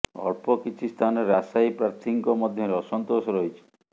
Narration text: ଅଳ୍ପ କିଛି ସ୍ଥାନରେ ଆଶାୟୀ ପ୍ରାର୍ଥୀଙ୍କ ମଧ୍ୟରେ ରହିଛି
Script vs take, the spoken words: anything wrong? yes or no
yes